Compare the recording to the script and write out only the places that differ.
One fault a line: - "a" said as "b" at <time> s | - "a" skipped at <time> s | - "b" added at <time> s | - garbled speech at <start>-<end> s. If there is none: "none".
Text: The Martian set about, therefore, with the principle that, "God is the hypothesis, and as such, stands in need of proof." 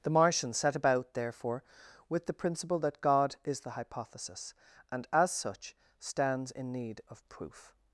none